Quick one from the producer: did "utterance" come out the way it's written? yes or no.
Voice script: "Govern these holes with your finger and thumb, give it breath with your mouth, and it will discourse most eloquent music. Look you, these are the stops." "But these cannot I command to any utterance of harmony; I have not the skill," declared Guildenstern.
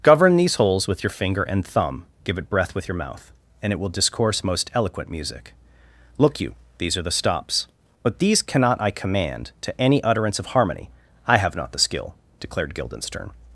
yes